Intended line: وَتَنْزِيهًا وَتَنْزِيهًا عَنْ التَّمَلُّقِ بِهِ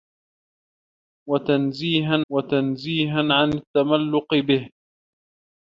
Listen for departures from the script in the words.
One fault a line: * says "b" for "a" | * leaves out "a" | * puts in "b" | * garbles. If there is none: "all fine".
all fine